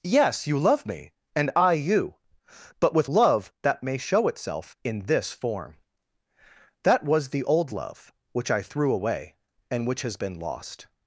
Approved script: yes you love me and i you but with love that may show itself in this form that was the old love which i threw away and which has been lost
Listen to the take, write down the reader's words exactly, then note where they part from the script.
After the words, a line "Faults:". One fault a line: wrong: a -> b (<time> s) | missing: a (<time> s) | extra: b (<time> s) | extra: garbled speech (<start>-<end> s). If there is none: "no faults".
yes you love me and i you but with love that may show itself in this form that was the old love which i threw away and which has been lost
Faults:
no faults